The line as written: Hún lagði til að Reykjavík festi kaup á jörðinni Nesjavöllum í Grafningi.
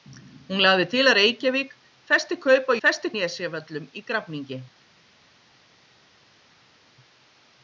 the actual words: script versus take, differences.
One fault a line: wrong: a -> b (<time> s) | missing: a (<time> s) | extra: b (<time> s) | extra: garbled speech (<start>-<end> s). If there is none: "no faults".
wrong: jörðinni -> festi (2.9 s)